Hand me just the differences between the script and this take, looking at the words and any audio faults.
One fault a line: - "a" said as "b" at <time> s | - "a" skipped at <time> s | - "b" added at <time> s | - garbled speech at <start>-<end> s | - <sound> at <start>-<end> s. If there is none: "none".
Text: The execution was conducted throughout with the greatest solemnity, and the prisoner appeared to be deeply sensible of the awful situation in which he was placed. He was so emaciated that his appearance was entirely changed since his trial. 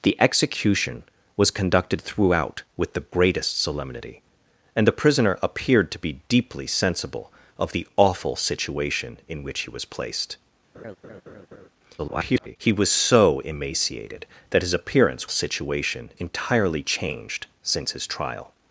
- laugh at 10.7-11.7 s
- garbled speech at 12.0-12.6 s
- "was" said as "situation" at 15.3 s